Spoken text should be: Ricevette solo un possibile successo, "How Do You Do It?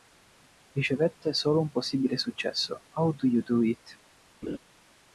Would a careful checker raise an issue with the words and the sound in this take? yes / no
yes